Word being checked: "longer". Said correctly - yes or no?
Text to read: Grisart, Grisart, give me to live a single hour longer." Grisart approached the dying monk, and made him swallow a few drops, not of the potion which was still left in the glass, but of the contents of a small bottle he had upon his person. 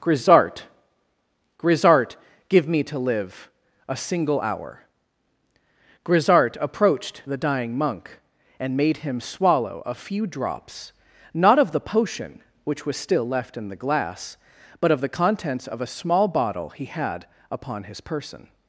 no